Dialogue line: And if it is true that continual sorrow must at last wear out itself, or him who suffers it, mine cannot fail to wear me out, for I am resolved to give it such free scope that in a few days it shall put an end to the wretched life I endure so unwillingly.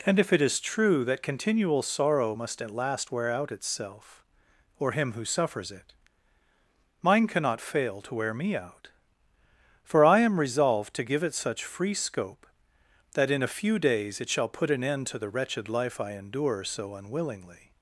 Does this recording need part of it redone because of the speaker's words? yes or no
no